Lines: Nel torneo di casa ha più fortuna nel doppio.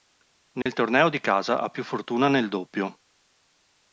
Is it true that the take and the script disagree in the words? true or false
false